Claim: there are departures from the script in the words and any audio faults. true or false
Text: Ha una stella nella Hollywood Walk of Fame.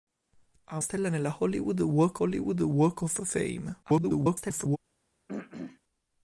true